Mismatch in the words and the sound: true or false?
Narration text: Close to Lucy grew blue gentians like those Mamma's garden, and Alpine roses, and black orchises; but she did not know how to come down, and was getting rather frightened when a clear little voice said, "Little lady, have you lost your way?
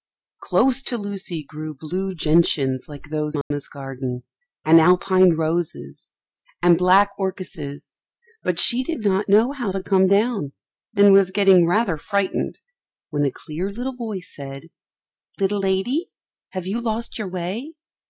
true